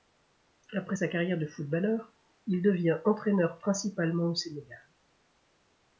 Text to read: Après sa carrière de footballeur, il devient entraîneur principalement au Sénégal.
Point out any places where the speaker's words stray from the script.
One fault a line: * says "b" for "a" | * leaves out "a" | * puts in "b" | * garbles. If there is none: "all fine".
all fine